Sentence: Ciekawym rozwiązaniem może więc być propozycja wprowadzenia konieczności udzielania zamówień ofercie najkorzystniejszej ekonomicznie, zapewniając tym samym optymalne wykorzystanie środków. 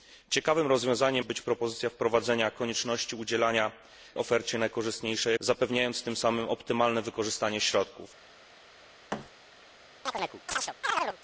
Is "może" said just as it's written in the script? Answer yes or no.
no